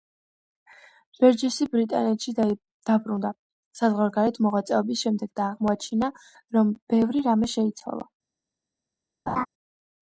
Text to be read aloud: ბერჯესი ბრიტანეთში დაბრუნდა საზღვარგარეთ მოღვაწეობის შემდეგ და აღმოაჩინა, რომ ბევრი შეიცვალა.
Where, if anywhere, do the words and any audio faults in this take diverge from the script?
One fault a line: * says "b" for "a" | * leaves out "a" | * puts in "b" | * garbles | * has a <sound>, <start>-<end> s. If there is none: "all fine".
* puts in "რამე"
* has a laugh, 9.3-9.5 s